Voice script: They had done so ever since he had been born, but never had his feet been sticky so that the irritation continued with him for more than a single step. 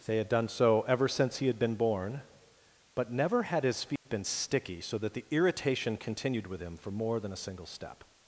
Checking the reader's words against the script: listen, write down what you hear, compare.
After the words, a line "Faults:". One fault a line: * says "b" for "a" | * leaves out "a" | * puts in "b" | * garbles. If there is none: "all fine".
They had done so ever since he had been born, but never had his feet been sticky so that the irritation continued with him for more than a single step.
Faults:
all fine